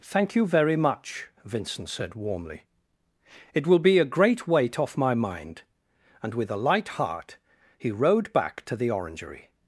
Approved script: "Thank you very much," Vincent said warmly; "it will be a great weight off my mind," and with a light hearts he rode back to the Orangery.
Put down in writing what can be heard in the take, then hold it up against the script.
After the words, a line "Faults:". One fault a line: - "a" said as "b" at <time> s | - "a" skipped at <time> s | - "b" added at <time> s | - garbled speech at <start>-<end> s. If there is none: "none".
"Thank you very much," Vincent said warmly; "it will be a great weight off my mind," and with a light heart he rode back to the Orangery.
Faults:
- "hearts" said as "heart" at 7.0 s